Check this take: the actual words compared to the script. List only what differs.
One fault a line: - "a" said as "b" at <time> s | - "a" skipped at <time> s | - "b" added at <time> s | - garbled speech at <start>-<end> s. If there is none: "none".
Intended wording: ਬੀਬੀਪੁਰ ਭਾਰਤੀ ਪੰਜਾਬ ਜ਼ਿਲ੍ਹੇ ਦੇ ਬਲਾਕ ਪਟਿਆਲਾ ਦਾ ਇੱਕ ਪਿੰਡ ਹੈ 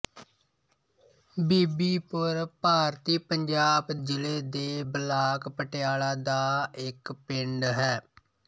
none